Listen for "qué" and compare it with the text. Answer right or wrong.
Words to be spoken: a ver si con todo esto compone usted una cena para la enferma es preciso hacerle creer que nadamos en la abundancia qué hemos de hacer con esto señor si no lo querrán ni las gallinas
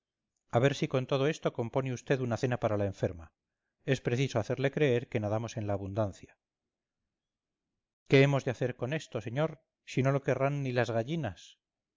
right